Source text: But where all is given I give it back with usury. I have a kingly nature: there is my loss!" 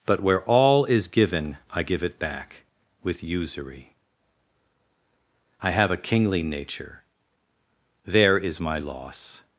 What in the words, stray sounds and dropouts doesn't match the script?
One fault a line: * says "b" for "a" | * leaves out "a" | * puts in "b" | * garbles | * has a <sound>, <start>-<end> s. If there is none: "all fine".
all fine